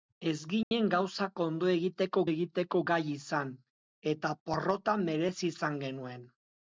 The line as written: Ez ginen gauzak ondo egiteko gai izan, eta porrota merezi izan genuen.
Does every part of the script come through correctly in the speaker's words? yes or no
no